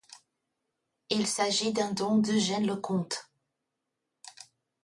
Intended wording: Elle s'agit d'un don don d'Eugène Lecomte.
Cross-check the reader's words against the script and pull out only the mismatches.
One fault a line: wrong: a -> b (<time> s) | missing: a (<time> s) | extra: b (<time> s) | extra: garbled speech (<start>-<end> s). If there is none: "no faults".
wrong: Elle -> Il (1.1 s)
missing: don (2.2 s)